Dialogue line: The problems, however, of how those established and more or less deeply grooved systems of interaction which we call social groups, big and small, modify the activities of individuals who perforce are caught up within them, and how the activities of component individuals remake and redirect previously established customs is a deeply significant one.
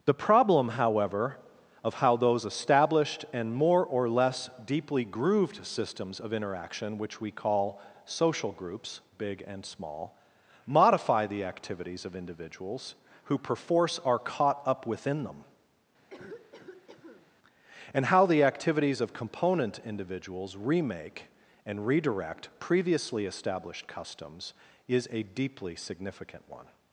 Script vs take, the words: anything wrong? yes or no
yes